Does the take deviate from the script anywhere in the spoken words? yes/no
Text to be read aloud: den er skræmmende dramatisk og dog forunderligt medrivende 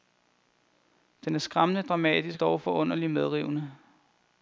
yes